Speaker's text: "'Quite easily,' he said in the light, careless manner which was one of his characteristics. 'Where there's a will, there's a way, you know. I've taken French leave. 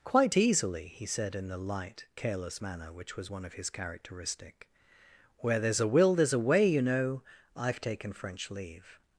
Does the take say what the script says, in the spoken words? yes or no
no